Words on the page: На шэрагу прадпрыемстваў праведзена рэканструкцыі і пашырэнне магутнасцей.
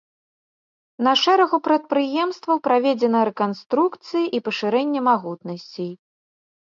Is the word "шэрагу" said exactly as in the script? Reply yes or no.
yes